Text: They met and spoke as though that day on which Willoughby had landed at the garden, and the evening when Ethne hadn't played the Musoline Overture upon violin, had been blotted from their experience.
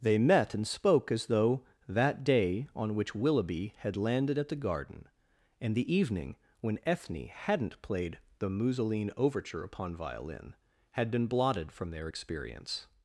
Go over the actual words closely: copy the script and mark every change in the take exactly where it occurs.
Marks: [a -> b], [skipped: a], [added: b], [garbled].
They met and spoke as though that day on which Willoughby had landed at the garden, and the evening when Ethne hadn't played the Musoline Overture upon violin, had been blotted from their experience.